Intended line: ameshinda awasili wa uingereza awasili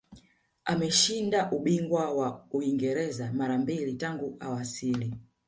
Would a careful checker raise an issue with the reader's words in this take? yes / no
yes